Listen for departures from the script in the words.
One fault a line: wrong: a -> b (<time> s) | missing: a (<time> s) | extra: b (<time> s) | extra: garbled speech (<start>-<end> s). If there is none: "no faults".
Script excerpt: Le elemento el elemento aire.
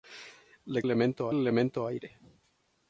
no faults